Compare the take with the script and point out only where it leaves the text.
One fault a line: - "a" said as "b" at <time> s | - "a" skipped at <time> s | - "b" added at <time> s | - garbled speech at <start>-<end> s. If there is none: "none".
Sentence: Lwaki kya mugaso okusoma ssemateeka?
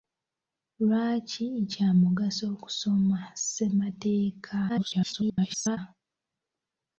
- garbled speech at 4.7-5.8 s